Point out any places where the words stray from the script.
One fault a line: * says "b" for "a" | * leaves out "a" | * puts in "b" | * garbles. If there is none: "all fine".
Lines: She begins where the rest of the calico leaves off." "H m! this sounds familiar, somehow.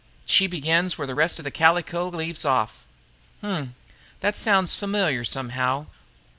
* says "that" for "this"